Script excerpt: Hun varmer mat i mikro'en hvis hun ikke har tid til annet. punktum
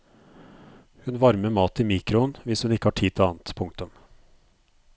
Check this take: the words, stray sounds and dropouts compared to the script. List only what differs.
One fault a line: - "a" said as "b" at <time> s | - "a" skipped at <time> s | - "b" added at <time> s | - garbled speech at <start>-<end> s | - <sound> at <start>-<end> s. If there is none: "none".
none